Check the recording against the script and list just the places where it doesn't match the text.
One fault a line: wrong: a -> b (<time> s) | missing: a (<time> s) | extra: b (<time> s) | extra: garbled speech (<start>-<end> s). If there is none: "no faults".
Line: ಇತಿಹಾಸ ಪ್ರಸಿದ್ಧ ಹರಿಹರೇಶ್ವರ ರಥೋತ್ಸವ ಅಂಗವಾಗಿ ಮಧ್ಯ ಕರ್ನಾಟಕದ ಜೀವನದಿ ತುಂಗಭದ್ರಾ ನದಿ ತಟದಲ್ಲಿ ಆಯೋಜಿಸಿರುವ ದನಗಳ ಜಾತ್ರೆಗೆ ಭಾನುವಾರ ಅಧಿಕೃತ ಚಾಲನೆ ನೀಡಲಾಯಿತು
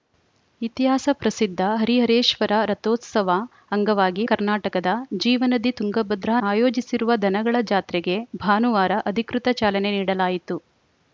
missing: ಮಧ್ಯ (4.2 s)
missing: ನದಿ ತಟದಲ್ಲಿ (6.3 s)